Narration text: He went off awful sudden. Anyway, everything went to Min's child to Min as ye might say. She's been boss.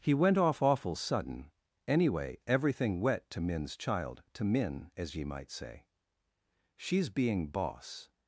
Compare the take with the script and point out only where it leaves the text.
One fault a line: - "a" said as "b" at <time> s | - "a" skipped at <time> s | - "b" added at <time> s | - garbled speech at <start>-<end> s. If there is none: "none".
- "went" said as "wet" at 3.0 s
- "been" said as "being" at 7.1 s